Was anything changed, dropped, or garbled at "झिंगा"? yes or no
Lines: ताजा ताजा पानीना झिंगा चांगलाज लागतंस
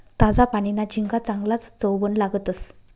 no